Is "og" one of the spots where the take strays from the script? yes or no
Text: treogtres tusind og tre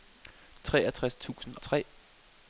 yes